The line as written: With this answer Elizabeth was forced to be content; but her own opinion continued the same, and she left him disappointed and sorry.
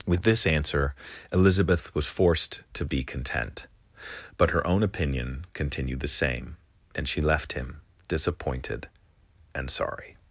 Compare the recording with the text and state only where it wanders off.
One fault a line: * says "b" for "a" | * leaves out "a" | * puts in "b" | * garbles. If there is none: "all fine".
all fine